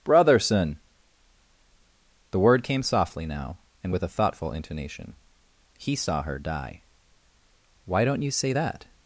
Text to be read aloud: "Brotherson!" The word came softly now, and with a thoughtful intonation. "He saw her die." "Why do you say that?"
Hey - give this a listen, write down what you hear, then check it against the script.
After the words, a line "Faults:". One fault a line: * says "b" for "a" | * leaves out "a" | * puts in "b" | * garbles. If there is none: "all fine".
"Brotherson!" The word came softly now, and with a thoughtful intonation. "He saw her die." "Why don't you say that?"
Faults:
* says "don't" for "do"